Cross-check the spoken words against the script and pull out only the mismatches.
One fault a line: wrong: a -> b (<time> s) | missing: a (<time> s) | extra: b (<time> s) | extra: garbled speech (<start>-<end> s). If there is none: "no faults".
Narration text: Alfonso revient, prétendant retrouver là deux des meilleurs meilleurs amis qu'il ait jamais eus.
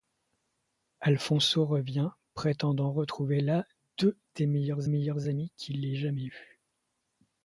no faults